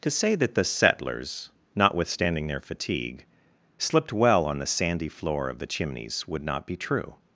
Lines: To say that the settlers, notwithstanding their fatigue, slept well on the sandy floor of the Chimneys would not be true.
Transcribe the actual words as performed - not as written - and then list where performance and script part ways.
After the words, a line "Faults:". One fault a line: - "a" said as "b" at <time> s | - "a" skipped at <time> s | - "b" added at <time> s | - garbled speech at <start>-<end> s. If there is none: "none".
To say that the settlers, notwithstanding their fatigue, slipped well on the sandy floor of the Chimneys would not be true.
Faults:
- "slept" said as "slipped" at 3.8 s